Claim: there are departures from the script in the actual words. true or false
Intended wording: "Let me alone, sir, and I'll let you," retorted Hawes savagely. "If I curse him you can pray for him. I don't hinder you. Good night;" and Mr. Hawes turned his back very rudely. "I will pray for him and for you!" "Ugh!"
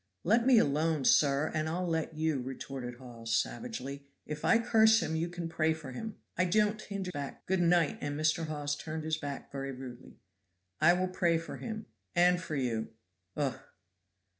true